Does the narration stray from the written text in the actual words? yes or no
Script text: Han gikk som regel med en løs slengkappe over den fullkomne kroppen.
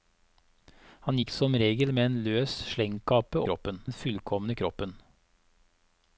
yes